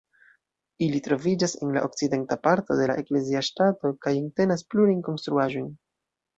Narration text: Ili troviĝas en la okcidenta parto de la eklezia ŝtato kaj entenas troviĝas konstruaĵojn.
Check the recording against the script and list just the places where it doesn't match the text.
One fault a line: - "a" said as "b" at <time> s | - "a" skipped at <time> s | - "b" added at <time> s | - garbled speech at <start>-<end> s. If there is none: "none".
- "troviĝas" said as "plurajn" at 4.7 s